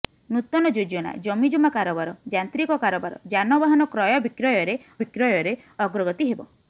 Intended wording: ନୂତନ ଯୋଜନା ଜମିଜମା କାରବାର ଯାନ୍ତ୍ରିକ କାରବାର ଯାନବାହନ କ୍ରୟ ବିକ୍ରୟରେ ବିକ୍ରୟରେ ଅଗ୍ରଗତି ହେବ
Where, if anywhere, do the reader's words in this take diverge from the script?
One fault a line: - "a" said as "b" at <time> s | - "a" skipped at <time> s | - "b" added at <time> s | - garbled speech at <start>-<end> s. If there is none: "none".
none